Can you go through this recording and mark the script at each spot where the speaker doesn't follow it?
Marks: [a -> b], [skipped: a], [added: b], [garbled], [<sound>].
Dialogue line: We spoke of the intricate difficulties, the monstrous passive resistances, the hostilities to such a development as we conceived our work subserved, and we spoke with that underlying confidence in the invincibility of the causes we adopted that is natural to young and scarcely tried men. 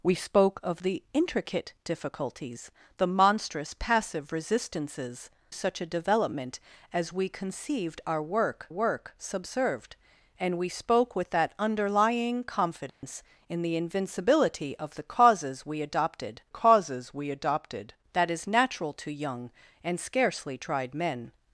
We spoke of the intricate difficulties, the monstrous passive resistances, [skipped: the hostilities to] such a development as we conceived our work [added: work] subserved, and we spoke with that underlying confidence [dropout] in the invincibility of the causes we adopted [added: causes we adopted] that is natural to young and scarcely tried men.